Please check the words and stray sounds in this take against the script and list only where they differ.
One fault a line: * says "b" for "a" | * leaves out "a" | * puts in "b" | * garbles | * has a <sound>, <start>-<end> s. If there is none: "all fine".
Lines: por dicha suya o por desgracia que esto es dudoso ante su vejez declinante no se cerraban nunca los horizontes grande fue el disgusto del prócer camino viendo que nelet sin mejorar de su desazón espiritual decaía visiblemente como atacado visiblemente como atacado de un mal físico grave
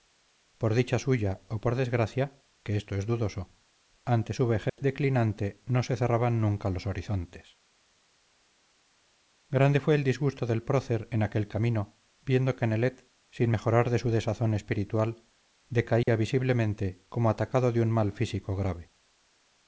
* has a dropout, 4.7-4.8 s
* puts in "en aquel"
* has a dropout, 16.0-16.1 s
* leaves out "visiblemente como atacado"